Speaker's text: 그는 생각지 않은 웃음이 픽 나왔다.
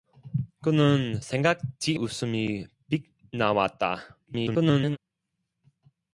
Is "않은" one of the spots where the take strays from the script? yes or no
yes